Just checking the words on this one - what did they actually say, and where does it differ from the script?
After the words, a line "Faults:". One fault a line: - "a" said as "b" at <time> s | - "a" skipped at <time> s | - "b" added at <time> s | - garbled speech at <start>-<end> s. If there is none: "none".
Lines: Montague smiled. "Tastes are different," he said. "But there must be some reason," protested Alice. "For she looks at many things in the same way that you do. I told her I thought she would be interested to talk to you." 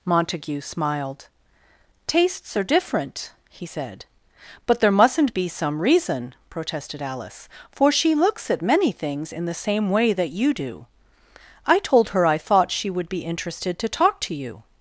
Montague smiled. "Tastes are different," he said. "But there mustn't be some reason," protested Alice. "For she looks at many things in the same way that you do. I told her I thought she would be interested to talk to you."
Faults:
- "must" said as "mustn't" at 4.9 s